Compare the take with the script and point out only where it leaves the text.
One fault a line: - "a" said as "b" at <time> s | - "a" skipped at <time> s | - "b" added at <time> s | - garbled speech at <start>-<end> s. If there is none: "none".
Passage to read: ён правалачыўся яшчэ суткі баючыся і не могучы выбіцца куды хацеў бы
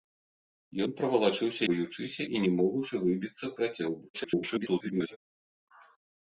- "яшчэ суткі" skipped at 1.6 s
- "куды" skipped at 3.5 s
- garbled speech at 4.1-5.2 s